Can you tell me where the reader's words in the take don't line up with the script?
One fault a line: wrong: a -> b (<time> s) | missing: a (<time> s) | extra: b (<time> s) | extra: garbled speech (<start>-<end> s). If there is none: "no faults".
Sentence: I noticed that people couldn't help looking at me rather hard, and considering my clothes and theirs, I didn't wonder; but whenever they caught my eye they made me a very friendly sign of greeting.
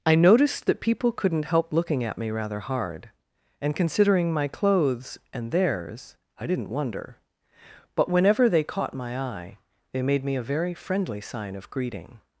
no faults